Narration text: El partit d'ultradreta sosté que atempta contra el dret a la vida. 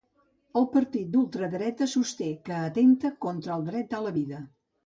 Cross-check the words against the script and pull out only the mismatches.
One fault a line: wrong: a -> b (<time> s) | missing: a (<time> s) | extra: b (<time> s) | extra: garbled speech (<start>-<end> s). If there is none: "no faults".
no faults